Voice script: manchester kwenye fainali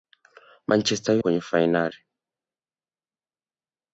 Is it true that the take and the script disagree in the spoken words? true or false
false